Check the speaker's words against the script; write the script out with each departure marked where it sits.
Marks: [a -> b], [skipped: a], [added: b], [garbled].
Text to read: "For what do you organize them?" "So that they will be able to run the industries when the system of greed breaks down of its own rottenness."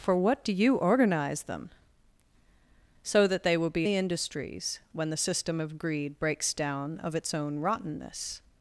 "For what do you organize them?" "So that they will be [skipped: able to run] the industries when the system of greed breaks down of its own rottenness."